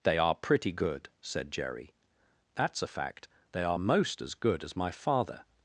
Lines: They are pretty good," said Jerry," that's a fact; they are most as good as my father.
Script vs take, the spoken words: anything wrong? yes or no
no